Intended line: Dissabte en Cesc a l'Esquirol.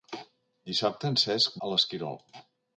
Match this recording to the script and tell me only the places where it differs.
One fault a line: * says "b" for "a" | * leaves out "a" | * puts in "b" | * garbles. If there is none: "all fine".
all fine